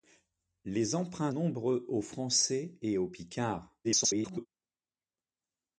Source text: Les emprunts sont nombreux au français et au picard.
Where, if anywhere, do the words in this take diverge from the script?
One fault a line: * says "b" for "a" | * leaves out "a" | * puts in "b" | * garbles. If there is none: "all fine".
* leaves out "sont"
* garbles